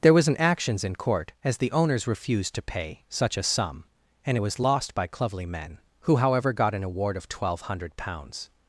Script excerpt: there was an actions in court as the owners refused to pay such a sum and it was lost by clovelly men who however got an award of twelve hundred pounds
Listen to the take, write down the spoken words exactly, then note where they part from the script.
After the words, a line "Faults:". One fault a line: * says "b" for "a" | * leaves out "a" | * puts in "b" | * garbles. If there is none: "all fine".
there was an actions in court as the owners refused to pay such a sum and it was lost by clovelly men who however got an award of twelve hundred pounds
Faults:
all fine